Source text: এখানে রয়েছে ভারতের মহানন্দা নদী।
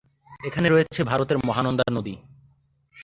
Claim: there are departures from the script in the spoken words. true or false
false